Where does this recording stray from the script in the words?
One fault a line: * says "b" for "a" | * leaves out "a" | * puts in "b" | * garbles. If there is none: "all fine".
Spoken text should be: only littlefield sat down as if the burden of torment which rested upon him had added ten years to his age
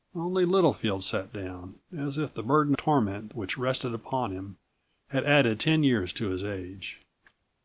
* leaves out "of"